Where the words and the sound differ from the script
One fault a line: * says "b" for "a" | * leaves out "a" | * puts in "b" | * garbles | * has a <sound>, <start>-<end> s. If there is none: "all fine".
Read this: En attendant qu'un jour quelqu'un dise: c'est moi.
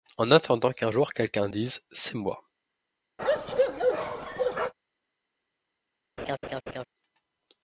* has a bark, 3.2-4.7 s
* has a laugh, 6.2-6.8 s